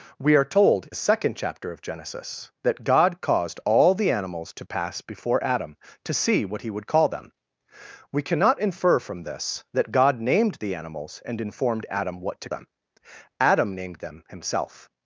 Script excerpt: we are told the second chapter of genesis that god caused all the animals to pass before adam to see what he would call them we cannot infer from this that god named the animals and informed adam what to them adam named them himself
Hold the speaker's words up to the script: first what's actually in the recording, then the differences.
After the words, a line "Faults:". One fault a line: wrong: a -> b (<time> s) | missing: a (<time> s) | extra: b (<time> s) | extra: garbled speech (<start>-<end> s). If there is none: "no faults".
we are told the second chapter of genesis that god caused all the animals to pass before adam to see what he would call them we cannot infer from this that god named the animals and informed adam what to them adam named them himself
Faults:
no faults